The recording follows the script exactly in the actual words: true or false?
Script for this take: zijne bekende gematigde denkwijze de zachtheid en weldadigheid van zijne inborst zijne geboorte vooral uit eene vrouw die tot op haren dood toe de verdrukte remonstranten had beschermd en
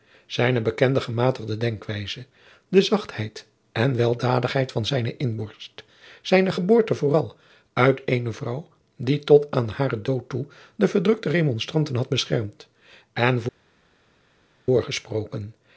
false